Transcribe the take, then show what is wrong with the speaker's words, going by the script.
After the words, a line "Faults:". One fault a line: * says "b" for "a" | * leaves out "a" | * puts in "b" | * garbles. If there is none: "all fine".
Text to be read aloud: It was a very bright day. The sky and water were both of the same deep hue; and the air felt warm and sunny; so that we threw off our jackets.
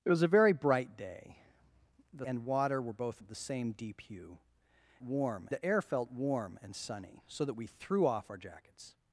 It was a very bright day. The and water were both of the same deep hue; warm the air felt warm and sunny; so that we threw off our jackets.
Faults:
* leaves out "sky"
* says "warm" for "and"